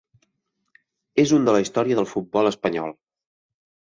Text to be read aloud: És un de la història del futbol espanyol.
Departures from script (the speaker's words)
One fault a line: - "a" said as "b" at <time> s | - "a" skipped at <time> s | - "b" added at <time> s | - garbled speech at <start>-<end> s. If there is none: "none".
none